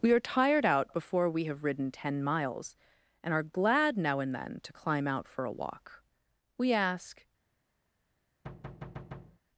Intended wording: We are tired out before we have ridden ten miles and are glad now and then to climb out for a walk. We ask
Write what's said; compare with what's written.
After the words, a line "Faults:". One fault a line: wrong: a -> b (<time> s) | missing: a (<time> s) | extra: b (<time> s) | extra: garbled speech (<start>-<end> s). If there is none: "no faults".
We are tired out before we have ridden ten miles and are glad now and then to climb out for a walk. We ask
Faults:
no faults